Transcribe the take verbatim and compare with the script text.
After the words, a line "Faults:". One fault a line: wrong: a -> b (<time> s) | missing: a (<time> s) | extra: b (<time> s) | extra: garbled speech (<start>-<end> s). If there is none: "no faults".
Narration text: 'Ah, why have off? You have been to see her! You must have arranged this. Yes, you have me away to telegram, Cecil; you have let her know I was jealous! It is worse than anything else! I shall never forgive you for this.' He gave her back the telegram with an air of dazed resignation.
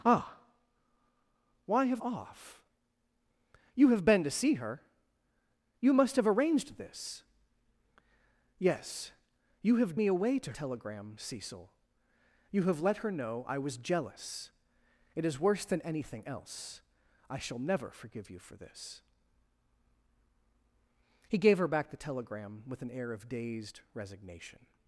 'Ah, why have off? You have been to see her! You must have arranged this. Yes, you have me away to telegram, Cecil; you have let her know I was jealous! It is worse than anything else! I shall never forgive you for this.' He gave her back the telegram with an air of dazed resignation.
Faults:
no faults